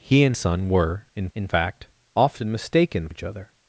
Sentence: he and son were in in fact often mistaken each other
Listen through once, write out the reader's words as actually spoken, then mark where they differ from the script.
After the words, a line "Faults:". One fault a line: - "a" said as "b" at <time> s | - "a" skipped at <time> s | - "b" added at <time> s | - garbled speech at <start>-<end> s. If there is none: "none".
he and son were in in fact often mistaken each other
Faults:
none